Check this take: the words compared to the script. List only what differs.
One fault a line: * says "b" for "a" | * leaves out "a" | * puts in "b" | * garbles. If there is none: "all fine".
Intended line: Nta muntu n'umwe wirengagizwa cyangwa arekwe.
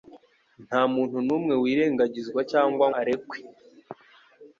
all fine